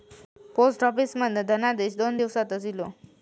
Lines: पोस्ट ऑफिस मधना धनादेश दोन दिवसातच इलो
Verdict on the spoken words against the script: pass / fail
pass